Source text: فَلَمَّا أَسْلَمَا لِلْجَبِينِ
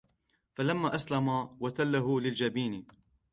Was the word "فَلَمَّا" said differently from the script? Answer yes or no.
no